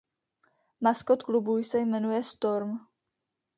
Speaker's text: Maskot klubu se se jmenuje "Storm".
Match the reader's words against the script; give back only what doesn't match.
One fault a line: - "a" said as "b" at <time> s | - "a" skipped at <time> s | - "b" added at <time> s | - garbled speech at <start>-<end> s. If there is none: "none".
- "se" skipped at 1.8 s